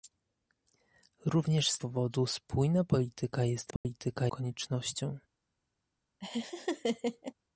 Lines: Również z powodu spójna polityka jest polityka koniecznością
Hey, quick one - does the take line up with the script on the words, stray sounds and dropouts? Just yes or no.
no